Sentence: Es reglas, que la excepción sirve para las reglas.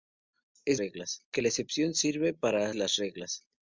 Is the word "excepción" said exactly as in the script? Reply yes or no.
yes